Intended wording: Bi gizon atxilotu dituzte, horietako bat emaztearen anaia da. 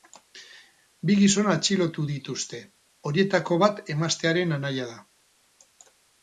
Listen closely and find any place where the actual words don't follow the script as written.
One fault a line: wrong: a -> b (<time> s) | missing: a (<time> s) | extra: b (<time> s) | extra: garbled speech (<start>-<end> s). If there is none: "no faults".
no faults